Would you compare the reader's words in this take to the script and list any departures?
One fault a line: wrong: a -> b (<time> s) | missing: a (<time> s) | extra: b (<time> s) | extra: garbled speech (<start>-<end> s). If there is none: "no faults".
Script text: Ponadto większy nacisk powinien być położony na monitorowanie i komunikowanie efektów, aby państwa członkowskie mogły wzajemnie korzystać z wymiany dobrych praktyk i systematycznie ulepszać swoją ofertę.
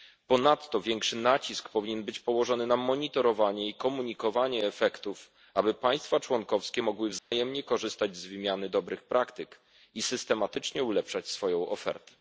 no faults